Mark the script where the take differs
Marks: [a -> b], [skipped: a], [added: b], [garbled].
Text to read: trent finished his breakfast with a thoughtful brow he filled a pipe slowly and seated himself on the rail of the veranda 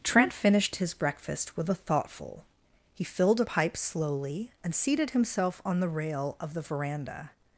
trent finished his breakfast with a thoughtful [skipped: brow] he filled a pipe slowly and seated himself on the rail of the veranda